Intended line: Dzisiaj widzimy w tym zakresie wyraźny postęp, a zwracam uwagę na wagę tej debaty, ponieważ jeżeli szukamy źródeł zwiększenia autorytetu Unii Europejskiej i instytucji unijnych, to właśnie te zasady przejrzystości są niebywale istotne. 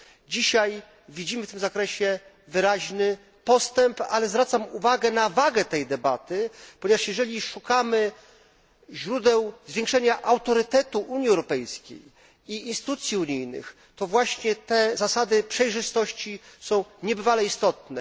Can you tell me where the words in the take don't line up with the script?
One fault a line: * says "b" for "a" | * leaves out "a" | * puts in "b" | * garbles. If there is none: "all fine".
* says "ale" for "a"